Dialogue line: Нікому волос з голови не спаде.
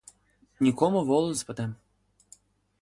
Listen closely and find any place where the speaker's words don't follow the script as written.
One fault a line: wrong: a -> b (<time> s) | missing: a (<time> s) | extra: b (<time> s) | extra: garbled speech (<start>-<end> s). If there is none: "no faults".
missing: голови не (1.4 s)